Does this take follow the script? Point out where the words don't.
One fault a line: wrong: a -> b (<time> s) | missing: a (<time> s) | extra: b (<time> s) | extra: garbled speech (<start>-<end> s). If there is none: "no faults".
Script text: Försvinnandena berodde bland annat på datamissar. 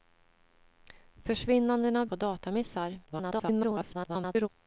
missing: berodde bland annat (2.0 s)
extra: garbled speech (3.1-4.5 s)